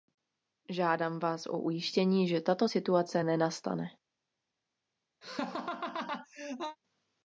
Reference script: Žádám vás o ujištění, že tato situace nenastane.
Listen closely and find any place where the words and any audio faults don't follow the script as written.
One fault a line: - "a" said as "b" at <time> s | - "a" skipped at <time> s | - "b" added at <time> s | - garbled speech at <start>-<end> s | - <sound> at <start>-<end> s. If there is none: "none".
- laugh at 5.2-6.8 s